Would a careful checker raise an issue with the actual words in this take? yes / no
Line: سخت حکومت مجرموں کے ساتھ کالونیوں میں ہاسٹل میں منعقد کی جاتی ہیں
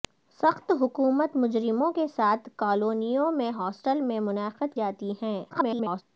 yes